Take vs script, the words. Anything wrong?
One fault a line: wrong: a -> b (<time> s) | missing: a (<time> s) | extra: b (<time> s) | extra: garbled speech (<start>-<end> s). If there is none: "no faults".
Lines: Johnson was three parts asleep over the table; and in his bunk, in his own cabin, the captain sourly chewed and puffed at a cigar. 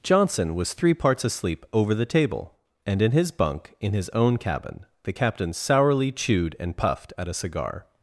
no faults